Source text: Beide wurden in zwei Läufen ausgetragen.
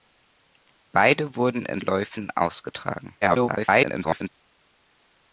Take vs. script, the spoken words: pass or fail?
fail